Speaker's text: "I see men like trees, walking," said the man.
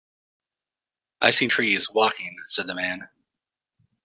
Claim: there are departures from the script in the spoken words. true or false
true